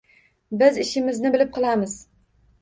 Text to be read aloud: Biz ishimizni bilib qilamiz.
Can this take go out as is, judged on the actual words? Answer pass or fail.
pass